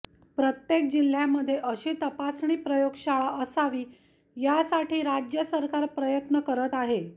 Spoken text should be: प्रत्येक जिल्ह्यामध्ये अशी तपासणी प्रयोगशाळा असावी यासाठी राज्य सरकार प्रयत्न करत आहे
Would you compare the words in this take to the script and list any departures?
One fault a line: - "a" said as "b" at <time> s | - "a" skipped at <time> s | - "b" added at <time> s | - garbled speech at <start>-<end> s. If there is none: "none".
none